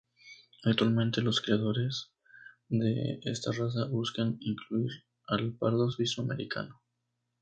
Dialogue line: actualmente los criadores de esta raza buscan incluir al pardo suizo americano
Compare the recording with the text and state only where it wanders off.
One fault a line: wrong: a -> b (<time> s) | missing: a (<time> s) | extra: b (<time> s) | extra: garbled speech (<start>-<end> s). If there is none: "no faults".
no faults